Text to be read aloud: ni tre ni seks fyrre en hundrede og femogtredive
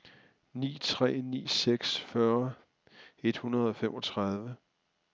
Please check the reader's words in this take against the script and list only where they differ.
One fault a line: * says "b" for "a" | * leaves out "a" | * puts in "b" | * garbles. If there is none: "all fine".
* says "et" for "en"